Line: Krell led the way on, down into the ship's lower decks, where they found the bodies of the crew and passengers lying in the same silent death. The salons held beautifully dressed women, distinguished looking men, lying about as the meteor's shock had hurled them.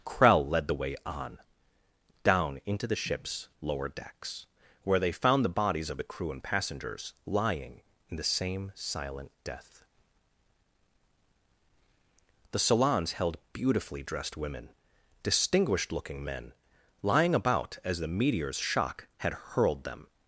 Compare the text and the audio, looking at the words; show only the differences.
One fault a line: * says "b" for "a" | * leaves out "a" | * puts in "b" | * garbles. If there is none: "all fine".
all fine